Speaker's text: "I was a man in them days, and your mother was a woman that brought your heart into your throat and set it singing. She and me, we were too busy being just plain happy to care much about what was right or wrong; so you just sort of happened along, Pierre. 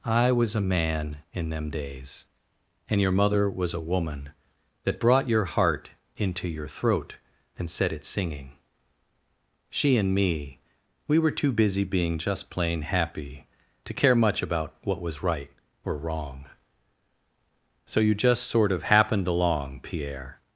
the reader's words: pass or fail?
pass